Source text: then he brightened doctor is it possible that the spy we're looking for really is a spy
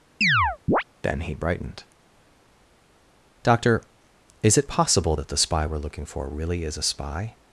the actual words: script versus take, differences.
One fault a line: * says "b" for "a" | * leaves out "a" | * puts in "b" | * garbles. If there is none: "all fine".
all fine